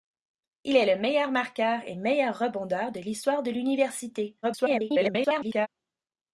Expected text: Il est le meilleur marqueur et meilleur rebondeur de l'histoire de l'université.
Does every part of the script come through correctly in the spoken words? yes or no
no